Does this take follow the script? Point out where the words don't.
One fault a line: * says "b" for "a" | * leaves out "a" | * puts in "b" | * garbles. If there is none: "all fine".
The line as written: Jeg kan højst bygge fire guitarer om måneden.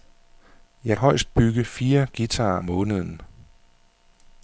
* leaves out "kan"
* leaves out "om"